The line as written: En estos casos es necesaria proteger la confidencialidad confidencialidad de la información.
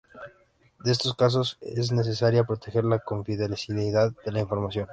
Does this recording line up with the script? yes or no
no